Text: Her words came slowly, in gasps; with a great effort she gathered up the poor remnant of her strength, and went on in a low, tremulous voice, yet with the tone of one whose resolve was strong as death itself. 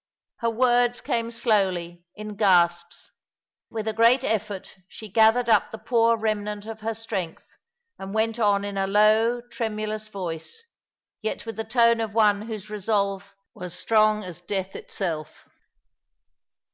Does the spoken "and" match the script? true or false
true